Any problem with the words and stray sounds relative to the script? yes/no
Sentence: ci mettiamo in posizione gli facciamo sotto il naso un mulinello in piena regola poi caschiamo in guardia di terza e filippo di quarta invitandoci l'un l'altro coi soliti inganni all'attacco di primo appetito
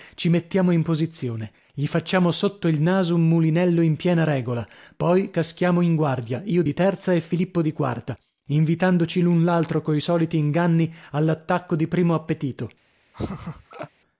yes